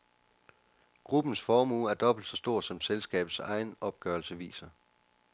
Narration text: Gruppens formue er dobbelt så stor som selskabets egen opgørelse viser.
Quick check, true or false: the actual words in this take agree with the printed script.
true